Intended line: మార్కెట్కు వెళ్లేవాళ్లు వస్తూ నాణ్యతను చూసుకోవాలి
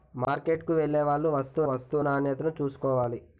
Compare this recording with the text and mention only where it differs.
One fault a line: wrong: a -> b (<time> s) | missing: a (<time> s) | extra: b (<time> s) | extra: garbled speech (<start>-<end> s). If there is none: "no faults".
extra: వస్తూ (1.6 s)